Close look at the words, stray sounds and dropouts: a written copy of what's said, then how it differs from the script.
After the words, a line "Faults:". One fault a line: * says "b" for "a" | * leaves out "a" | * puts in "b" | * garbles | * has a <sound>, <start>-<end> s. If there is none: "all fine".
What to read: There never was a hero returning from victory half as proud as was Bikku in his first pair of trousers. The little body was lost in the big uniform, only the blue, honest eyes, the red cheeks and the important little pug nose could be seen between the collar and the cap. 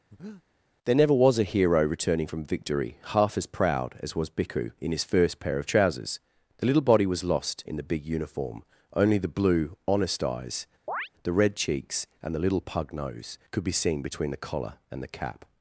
There never was a hero returning from victory half as proud as was Bikku in his first pair of trousers. The little body was lost in the big uniform, only the blue, honest eyes, the red cheeks and the little pug nose could be seen between the collar and the cap.
Faults:
* has a breath, 0.1-0.4 s
* has a chirp, 10.9-11.1 s
* leaves out "important"